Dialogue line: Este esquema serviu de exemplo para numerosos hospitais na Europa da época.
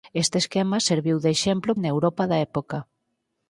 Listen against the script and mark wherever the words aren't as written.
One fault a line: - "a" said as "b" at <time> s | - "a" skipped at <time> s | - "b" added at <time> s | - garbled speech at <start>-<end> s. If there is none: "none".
- "para numerosos hospitais" skipped at 1.7 s